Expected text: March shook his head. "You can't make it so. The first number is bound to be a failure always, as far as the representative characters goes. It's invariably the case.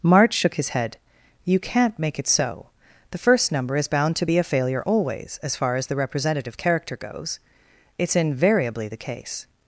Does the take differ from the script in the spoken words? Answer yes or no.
yes